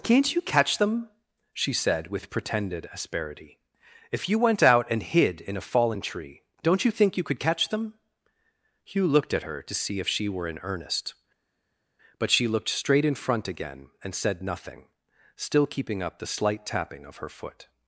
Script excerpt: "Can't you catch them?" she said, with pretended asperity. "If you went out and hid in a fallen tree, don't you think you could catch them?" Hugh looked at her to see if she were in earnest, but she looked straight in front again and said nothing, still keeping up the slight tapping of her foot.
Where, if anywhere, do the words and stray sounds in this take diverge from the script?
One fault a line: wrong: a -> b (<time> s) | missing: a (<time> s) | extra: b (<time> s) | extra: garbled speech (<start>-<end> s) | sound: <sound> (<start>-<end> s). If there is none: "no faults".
no faults